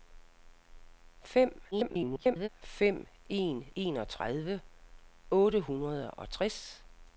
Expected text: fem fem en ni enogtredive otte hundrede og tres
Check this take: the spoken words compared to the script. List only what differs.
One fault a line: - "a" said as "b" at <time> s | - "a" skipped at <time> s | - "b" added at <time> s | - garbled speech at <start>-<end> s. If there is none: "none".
- garbled speech at 1.7-2.5 s
- "ni" skipped at 3.7 s